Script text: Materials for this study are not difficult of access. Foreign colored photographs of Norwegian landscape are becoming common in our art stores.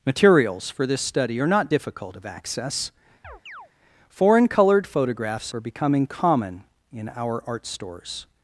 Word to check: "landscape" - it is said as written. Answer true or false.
false